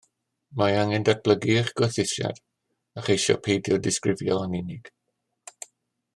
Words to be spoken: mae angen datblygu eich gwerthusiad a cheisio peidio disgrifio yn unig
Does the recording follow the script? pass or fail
pass